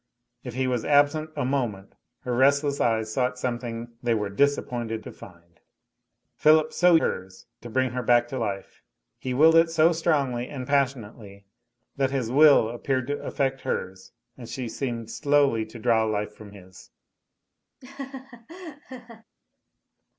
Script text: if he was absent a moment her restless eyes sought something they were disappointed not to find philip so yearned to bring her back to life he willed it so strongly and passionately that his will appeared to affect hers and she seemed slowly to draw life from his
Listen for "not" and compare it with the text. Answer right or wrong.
wrong